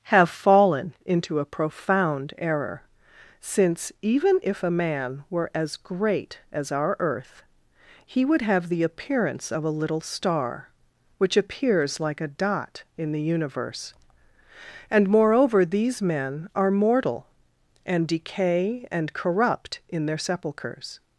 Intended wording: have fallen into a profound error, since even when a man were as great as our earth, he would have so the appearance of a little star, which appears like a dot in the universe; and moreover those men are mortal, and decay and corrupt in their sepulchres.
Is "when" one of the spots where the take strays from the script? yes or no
yes